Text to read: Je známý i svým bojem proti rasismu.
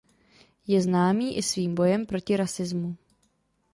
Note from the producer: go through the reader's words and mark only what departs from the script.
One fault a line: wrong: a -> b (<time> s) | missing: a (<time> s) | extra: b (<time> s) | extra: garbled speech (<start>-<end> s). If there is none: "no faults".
no faults